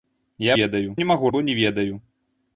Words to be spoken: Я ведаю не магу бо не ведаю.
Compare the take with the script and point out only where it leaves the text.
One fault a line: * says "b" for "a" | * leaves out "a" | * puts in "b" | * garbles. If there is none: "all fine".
all fine